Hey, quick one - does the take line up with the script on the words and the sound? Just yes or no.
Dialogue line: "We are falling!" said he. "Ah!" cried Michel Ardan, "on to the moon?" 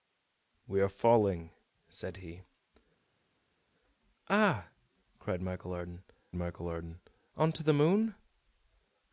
no